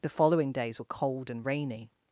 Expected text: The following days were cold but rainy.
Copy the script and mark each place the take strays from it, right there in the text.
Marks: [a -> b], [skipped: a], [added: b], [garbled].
The following days were cold [but -> and] rainy.